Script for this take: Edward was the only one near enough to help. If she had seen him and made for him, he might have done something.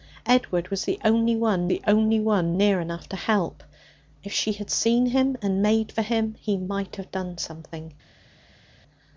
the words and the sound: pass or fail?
fail